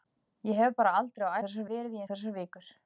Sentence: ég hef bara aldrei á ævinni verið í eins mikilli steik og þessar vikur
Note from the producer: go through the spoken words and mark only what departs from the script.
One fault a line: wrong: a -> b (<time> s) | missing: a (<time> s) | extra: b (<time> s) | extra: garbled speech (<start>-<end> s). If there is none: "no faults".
wrong: ævinni -> þessar (1.4 s)
missing: eins mikilli steik (2.0 s)